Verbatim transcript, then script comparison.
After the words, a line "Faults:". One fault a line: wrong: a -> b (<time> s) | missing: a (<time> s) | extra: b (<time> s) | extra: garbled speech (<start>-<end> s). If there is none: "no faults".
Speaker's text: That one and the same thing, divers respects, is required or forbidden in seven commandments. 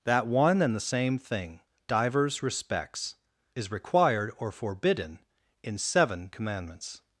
That one and the same thing, divers respects, is required or forbidden in seven commandments.
Faults:
no faults